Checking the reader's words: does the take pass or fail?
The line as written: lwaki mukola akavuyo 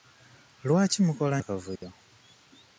pass